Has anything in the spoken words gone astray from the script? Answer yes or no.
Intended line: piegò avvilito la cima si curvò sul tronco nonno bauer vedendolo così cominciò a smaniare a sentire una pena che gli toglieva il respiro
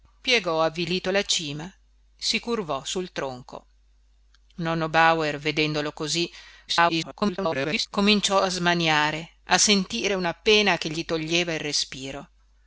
yes